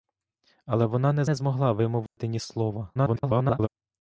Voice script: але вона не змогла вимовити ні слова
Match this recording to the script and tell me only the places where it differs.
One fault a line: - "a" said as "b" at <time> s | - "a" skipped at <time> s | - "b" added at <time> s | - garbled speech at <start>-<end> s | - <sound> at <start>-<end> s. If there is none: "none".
- "не" added at 1.2 s
- dropout at 2.1-2.2 s
- garbled speech at 2.9-3.7 s